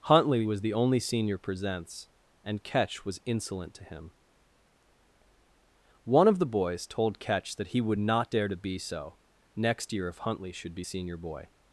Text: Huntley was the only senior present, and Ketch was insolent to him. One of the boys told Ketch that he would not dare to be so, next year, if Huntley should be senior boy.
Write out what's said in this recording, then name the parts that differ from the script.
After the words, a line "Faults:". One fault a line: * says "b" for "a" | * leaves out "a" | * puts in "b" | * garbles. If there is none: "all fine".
Huntley was the only senior presents, and Ketch was insolent to him. One of the boys told Ketch that he would not dare to be so, next year, if Huntley should be senior boy.
Faults:
* says "presents" for "present"